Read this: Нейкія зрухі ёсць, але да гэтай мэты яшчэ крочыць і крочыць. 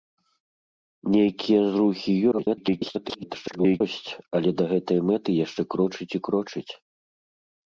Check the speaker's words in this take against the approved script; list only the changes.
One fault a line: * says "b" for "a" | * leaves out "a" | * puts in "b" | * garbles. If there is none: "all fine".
* garbles